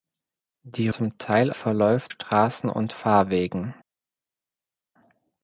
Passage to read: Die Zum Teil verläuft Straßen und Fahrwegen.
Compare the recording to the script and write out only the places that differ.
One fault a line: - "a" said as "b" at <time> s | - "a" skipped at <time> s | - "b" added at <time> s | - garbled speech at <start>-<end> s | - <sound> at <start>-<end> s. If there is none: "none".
none